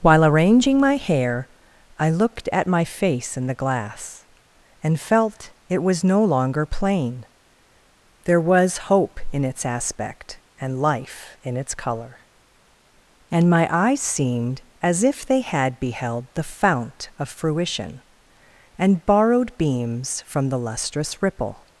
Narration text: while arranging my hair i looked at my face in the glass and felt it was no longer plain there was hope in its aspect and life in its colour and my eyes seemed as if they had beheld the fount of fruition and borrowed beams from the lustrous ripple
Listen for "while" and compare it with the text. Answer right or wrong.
right